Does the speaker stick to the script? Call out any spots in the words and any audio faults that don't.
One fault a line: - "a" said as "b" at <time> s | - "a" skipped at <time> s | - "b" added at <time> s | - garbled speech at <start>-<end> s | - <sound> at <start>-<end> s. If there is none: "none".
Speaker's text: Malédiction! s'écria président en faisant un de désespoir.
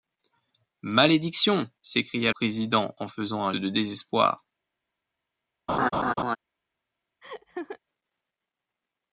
- laugh at 5.7-6.4 s
- laugh at 7.2-7.8 s